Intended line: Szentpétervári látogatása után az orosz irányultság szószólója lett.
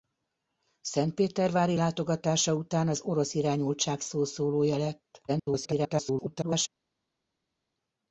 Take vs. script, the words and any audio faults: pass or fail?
fail